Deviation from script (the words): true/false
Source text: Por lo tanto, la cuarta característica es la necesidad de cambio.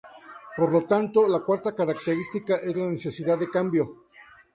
false